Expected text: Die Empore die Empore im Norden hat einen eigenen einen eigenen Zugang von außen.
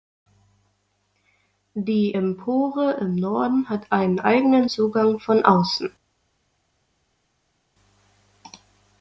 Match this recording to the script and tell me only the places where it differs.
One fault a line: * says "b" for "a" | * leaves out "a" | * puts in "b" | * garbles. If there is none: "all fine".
* leaves out "die Empore"
* leaves out "einen eigenen"